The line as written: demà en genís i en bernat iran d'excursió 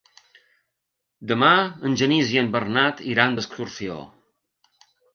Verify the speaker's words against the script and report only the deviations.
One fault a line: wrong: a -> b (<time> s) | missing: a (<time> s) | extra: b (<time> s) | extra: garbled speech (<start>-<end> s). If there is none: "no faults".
no faults